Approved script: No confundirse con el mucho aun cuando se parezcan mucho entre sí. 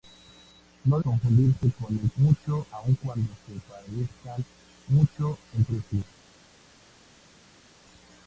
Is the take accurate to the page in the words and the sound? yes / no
yes